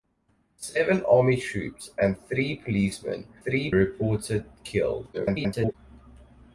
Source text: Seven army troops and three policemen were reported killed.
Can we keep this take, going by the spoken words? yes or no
no